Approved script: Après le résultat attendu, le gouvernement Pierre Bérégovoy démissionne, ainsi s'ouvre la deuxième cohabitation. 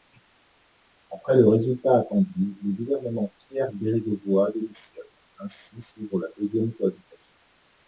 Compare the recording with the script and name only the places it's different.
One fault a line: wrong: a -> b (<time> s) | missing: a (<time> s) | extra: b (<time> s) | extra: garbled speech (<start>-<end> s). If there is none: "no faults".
no faults